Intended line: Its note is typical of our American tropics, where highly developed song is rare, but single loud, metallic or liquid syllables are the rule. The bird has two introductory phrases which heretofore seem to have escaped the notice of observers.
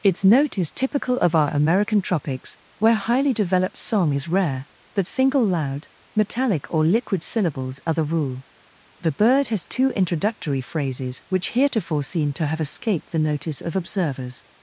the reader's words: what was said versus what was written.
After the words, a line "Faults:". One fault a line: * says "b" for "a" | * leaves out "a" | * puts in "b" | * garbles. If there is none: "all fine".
Its note is typical of our American tropics, where highly developed song is rare, but single loud, metallic or liquid syllables are the rule. The bird has two introductory phrases which heretofore seem to have escaped the notice of observers.
Faults:
all fine